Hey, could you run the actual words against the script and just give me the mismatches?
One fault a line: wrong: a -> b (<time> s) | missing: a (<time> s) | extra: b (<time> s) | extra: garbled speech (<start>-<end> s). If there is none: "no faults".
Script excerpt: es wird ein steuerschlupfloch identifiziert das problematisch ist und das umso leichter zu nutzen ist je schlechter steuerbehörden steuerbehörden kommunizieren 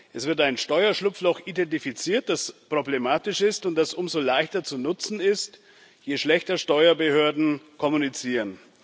missing: steuerbehörden (7.6 s)